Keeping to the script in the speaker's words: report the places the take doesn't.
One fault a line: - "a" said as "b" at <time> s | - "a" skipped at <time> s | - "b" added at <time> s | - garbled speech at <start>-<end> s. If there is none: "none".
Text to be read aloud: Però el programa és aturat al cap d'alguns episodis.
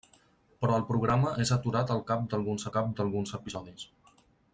- "cap d'alguns" added at 2.8 s